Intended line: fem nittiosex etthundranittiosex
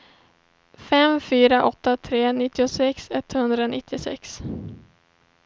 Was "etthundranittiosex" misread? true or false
false